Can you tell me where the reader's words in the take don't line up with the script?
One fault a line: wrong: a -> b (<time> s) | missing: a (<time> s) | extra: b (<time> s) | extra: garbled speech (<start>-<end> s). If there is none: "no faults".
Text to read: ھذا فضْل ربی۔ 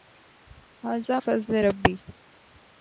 no faults